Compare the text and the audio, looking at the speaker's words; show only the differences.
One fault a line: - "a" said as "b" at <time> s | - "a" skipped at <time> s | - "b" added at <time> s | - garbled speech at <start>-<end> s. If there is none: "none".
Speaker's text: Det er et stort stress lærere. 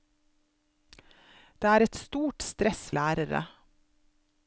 none